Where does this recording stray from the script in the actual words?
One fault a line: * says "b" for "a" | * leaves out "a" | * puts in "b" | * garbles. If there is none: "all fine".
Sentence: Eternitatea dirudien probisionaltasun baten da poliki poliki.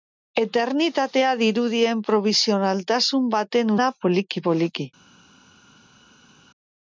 all fine